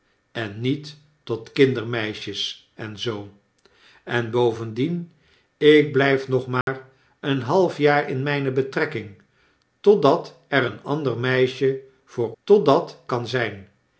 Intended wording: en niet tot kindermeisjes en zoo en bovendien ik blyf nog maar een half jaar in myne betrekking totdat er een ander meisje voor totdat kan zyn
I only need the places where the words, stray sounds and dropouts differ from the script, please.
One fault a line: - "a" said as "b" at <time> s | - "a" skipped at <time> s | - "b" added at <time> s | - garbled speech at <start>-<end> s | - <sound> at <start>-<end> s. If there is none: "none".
- dropout at 6.6-6.7 s